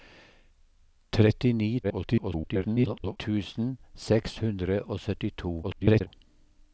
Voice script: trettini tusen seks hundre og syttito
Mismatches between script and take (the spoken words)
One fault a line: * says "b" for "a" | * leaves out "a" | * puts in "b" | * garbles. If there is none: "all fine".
* garbles
* garbles